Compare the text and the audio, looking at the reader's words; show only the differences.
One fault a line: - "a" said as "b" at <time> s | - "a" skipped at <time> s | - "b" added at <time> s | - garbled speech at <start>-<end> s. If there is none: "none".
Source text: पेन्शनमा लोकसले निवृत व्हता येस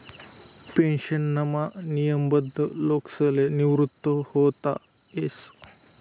- "नियमबद्ध" added at 1.9 s